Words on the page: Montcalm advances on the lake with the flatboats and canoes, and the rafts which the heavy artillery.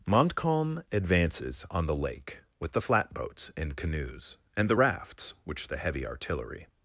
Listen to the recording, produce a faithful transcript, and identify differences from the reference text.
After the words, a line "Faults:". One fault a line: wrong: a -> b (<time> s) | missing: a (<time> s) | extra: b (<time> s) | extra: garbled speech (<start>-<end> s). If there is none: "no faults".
Montcalm advances on the lake with the flatboats and canoes, and the rafts which the heavy artillery.
Faults:
no faults